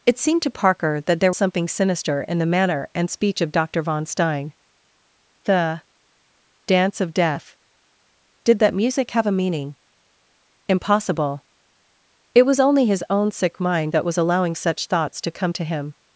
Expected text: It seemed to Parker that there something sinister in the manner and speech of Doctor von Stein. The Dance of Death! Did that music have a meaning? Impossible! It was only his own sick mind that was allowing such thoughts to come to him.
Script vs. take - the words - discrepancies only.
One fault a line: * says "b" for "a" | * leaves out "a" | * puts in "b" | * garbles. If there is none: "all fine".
all fine